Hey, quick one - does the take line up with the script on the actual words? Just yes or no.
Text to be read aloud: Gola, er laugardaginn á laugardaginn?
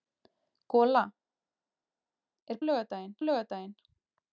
yes